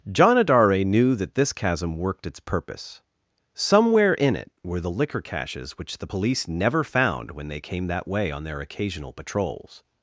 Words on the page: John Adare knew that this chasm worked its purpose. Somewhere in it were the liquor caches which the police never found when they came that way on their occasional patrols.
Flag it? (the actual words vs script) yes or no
no